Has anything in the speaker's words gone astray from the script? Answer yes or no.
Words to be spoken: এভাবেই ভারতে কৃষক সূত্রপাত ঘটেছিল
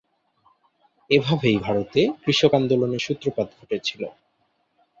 yes